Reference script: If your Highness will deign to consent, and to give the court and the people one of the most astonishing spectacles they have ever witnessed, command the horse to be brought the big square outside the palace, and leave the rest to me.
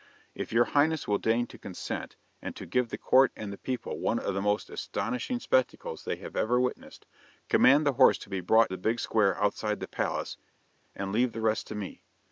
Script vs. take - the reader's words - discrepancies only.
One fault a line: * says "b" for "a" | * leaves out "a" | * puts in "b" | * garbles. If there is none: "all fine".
all fine